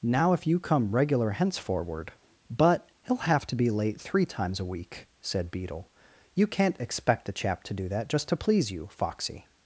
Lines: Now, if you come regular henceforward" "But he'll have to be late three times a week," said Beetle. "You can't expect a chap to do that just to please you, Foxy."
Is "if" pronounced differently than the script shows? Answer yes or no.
no